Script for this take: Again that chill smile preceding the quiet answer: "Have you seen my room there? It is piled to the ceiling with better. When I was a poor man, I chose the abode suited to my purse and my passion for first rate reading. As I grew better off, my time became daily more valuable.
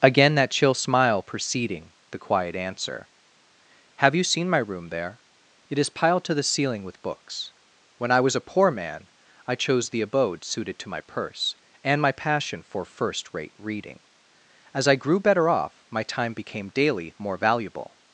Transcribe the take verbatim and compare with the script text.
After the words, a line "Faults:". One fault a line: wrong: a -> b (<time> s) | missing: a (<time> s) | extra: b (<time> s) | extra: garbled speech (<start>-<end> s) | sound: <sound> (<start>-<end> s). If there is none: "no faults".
Again that chill smile preceding the quiet answer: "Have you seen my room there? It is piled to the ceiling with books. When I was a poor man, I chose the abode suited to my purse and my passion for first rate reading. As I grew better off, my time became daily more valuable.
Faults:
wrong: better -> books (7.0 s)